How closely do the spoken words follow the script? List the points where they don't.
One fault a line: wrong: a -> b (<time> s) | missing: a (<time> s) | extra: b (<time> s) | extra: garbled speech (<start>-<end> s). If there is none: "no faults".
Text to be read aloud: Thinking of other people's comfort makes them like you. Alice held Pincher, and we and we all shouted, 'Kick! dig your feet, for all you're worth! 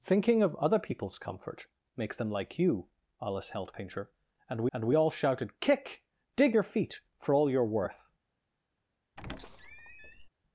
no faults